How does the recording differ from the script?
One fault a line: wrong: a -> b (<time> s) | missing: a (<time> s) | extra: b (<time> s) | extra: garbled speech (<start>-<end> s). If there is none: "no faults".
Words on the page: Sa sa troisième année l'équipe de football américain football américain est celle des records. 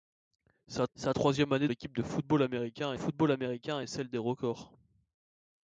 no faults